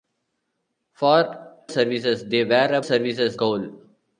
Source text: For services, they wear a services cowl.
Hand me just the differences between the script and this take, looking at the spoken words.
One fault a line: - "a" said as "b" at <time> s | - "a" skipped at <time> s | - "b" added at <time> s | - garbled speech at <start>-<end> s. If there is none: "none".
none